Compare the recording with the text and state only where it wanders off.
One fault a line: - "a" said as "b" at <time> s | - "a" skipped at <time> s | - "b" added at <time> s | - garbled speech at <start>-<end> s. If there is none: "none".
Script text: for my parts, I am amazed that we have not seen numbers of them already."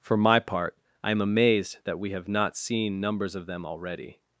- "parts" said as "part" at 0.4 s